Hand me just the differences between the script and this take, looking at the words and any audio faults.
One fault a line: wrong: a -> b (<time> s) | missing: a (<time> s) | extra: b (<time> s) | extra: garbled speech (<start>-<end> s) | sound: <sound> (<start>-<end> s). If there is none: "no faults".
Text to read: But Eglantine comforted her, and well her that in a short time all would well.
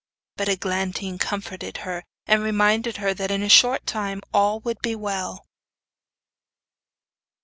wrong: well -> reminded (2.4 s)
extra: be (4.8 s)